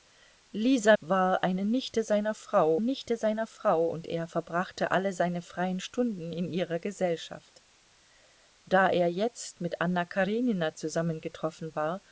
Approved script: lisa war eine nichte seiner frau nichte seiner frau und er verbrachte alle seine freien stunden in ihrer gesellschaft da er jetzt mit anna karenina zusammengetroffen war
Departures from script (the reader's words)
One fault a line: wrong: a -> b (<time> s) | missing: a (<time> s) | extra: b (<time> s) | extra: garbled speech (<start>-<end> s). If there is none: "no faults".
no faults